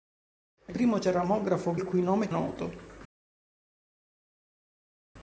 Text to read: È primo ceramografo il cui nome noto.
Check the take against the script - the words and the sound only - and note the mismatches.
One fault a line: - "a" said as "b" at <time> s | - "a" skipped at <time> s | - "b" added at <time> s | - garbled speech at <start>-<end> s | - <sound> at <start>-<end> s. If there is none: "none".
none